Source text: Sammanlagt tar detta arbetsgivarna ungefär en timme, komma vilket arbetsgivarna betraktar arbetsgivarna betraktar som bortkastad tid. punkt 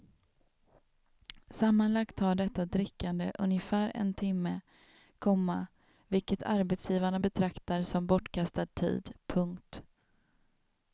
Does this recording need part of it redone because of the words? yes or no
yes